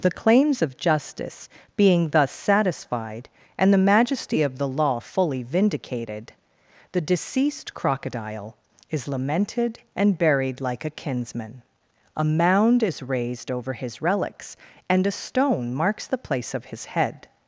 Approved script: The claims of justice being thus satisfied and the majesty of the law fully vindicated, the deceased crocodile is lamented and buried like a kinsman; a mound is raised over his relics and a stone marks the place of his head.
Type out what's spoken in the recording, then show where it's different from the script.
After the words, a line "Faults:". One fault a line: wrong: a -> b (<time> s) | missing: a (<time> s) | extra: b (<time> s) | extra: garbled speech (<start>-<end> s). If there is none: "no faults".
The claims of justice being thus satisfied and the majesty of the law fully vindicated, the deceased crocodile is lamented and buried like a kinsman; a mound is raised over his relics and a stone marks the place of his head.
Faults:
no faults